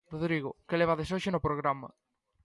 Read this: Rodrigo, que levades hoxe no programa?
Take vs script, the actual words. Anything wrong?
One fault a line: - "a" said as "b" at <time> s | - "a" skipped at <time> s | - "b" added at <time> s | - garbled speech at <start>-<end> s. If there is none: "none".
none